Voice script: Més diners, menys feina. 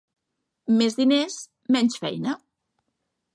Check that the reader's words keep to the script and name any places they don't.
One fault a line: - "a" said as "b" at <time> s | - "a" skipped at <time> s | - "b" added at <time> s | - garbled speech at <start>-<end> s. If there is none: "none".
none